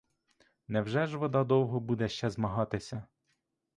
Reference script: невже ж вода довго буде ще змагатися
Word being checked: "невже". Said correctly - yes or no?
yes